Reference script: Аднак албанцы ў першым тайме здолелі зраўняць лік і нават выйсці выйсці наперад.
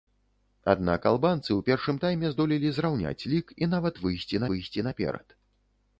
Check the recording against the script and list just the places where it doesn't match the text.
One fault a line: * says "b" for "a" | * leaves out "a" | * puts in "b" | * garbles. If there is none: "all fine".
all fine